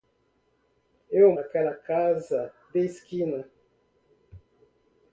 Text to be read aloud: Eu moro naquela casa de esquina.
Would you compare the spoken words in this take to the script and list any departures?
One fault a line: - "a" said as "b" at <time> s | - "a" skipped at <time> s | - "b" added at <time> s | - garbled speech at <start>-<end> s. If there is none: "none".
- "moro" skipped at 1.3 s